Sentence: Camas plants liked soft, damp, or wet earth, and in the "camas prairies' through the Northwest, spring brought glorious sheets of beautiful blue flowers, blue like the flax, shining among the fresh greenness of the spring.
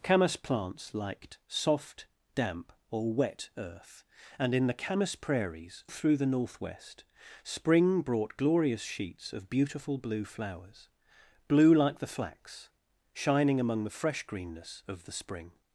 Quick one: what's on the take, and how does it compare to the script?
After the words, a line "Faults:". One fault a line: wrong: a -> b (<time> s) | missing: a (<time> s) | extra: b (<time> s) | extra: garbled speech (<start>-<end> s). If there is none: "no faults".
Camas plants liked soft, damp, or wet earth, and in the "camas prairies' through the Northwest, spring brought glorious sheets of beautiful blue flowers, blue like the flax, shining among the fresh greenness of the spring.
Faults:
no faults